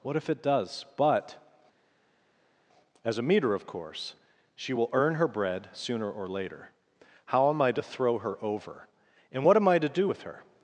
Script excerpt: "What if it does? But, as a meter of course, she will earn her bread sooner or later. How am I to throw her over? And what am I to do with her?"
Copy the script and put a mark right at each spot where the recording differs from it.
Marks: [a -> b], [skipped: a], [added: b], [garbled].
"What if it does? But, as a meter of course, she will earn her bread sooner or later. How am I to throw her over? And what am I to do with her?"